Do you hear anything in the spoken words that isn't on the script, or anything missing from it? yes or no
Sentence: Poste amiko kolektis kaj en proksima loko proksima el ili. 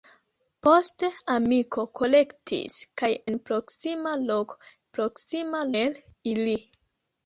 no